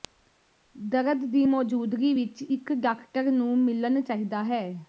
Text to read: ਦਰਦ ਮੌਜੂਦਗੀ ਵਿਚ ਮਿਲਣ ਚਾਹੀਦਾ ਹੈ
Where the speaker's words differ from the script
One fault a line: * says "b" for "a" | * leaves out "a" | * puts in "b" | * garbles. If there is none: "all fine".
* puts in "ਦੀ"
* puts in "ਇਕ ਡਾਕਟਰ ਨੂੰ"